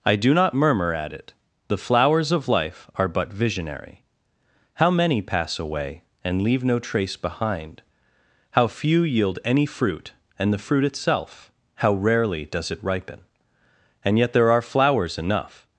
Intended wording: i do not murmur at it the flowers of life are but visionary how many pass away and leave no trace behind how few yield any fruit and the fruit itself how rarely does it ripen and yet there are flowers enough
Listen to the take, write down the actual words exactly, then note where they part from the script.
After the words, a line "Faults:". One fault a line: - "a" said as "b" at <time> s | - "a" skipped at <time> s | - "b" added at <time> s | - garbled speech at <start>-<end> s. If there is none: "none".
i do not murmur at it the flowers of life are but visionary how many pass away and leave no trace behind how few yield any fruit and the fruit itself how rarely does it ripen and yet there are flowers enough
Faults:
none